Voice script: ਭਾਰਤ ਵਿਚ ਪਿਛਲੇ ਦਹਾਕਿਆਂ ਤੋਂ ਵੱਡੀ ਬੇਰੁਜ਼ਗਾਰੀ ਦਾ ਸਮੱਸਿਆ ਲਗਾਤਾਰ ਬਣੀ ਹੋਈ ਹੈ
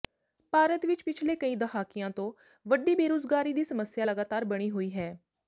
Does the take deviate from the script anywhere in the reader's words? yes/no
yes